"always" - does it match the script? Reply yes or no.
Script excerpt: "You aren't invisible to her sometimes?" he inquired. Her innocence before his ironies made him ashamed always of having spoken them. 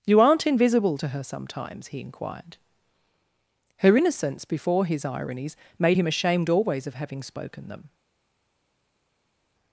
yes